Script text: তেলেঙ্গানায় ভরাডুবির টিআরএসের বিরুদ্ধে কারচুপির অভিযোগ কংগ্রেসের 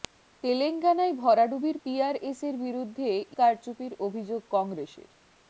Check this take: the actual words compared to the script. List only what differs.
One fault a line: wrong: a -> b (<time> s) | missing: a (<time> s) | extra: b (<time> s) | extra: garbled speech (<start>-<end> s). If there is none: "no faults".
no faults